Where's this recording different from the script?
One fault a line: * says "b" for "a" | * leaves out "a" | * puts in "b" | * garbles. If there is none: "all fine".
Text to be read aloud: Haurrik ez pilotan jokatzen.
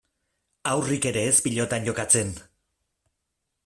* puts in "ere"